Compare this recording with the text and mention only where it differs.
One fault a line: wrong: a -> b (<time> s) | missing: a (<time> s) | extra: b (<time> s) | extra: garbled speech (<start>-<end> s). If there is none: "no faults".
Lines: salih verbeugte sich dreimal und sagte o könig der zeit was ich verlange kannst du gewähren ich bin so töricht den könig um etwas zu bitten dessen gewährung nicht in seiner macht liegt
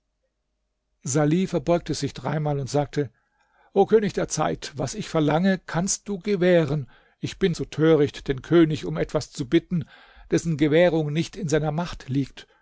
no faults